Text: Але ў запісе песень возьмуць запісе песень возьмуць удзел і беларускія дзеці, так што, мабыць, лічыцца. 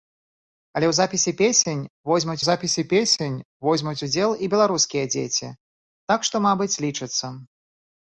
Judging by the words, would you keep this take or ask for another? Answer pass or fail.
pass